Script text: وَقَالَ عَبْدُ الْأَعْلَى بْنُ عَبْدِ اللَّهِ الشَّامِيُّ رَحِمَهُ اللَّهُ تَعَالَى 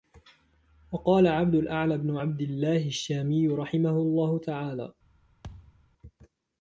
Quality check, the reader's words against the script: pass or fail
pass